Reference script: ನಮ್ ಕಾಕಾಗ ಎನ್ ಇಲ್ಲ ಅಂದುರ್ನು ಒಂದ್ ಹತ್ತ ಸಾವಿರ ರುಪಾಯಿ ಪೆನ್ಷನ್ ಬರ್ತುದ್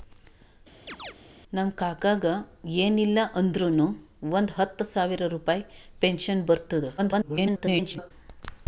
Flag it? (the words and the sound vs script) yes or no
yes